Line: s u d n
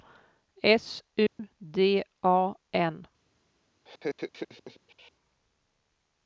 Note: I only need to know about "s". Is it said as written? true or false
true